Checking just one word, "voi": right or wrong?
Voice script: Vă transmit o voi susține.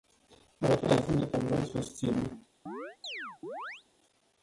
right